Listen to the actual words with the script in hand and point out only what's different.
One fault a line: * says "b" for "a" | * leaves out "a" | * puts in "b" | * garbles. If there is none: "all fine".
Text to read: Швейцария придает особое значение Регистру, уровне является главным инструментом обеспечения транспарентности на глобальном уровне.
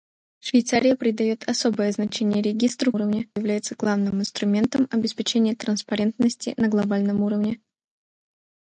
all fine